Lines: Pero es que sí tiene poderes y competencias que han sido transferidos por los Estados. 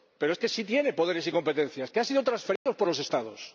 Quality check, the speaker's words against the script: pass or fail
pass